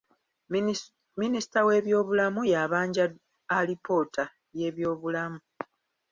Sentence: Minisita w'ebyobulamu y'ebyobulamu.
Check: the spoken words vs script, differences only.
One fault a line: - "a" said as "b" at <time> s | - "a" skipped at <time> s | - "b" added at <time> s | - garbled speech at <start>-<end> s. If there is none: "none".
- "yabanja alipoota" added at 2.5 s